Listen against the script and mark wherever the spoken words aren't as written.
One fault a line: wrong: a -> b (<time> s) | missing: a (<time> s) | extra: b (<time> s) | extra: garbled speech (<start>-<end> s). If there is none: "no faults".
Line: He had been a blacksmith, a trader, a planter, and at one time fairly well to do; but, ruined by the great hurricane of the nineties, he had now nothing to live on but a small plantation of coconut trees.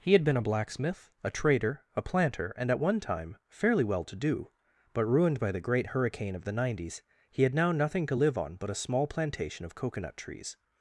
no faults